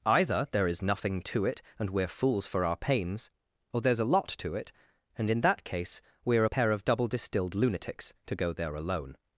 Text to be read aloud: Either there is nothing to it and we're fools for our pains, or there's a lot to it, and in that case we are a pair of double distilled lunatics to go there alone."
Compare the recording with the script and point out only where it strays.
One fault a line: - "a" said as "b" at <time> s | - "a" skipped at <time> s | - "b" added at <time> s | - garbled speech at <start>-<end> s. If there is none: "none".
none